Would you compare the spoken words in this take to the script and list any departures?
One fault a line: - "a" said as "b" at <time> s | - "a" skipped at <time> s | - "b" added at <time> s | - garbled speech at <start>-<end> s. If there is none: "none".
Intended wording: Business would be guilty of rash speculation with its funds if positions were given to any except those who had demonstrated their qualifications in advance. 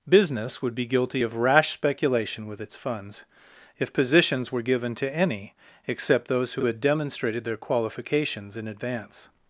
- "who" added at 6.6 s